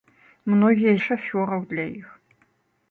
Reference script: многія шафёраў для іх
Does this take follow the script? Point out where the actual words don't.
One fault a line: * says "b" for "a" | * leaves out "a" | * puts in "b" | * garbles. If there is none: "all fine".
all fine